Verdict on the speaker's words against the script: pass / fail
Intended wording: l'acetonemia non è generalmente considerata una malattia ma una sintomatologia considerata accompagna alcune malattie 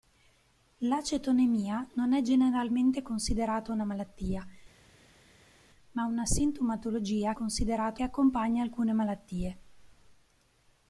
pass